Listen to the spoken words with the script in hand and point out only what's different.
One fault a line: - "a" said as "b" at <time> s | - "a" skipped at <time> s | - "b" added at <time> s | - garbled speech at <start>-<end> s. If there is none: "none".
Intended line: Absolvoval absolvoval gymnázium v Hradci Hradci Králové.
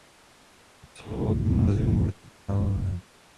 - "absolvoval" skipped at 1.4 s
- "Hradci" skipped at 2.3 s